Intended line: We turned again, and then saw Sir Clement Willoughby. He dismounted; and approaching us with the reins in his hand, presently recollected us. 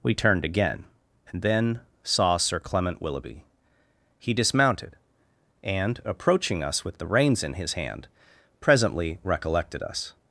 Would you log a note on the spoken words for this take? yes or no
no